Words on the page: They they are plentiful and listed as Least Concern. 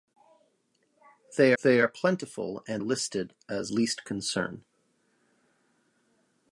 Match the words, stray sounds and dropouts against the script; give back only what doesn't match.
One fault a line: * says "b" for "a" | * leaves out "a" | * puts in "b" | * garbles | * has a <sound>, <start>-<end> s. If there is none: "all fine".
all fine